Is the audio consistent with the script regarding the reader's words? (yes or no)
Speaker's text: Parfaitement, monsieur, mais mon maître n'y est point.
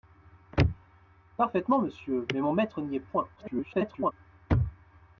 no